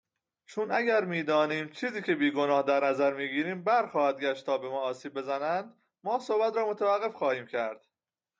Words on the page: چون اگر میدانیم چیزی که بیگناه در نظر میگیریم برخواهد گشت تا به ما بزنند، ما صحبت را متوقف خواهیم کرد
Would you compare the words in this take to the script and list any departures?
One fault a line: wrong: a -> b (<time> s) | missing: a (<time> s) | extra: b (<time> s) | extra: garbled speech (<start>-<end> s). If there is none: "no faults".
extra: آسیب (4.8 s)